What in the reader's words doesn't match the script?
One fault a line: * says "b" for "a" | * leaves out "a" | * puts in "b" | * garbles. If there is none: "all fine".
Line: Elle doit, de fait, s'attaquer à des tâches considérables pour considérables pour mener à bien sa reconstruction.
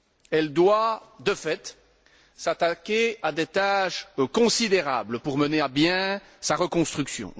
* leaves out "considérables pour"